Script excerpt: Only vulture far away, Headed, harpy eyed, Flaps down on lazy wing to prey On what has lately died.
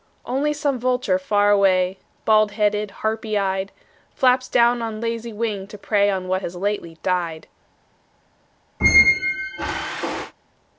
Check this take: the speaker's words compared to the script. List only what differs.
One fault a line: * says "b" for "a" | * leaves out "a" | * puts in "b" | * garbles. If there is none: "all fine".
* puts in "some"
* puts in "Bald"